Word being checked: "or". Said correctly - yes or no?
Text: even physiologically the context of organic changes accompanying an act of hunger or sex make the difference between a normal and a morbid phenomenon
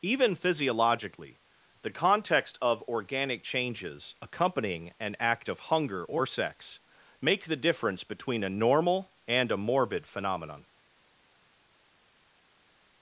yes